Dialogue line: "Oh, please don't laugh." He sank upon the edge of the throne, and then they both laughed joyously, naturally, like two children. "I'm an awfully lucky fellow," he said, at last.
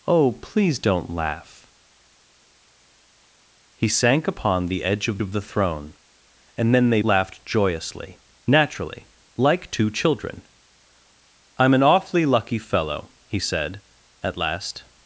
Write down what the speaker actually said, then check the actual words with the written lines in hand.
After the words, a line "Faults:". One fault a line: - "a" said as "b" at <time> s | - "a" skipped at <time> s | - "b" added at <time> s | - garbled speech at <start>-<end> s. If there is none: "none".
"Oh, please don't laugh." He sank upon the edge of of the throne, and then they laughed joyously, naturally, like two children. "I'm an awfully lucky fellow," he said, at last.
Faults:
- "of" added at 5.2 s
- "both" skipped at 7.0 s